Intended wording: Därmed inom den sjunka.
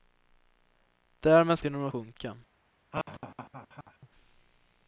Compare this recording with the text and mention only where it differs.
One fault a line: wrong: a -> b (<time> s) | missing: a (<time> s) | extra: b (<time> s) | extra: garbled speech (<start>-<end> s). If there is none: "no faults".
no faults